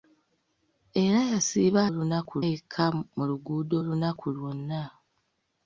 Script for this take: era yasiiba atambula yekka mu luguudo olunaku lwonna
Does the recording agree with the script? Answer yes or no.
no